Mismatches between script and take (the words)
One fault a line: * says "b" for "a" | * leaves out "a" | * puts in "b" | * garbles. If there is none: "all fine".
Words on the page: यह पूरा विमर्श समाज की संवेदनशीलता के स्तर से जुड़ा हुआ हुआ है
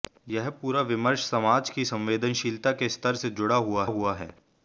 all fine